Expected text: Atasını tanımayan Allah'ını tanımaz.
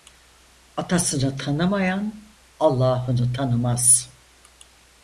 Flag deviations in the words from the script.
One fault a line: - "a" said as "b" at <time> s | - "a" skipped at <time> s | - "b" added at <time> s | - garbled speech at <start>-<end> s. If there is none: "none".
none